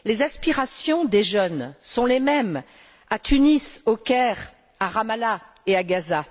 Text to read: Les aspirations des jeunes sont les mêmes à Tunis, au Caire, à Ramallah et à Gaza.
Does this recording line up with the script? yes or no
yes